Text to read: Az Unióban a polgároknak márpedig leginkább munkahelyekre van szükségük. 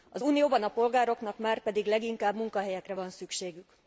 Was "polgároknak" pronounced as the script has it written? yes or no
yes